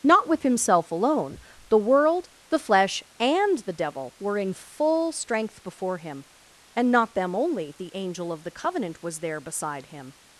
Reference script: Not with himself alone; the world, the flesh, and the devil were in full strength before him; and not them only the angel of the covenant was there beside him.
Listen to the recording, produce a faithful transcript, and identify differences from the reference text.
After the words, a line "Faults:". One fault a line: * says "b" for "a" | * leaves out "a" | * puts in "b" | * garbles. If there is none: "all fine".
Not with himself alone; the world, the flesh, and the devil were in full strength before him; and not them only the angel of the covenant was there beside him.
Faults:
all fine